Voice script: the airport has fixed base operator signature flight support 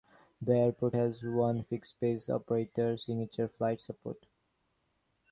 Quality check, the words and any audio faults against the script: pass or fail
fail